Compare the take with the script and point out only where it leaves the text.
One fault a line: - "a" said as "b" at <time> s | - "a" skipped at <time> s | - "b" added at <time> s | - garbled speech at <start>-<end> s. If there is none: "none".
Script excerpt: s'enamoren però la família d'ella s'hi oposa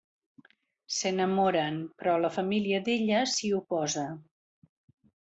none